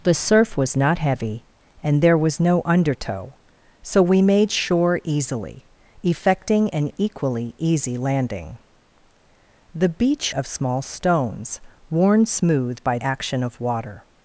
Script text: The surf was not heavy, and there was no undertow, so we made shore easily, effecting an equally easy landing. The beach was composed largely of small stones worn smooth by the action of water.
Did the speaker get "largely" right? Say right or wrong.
wrong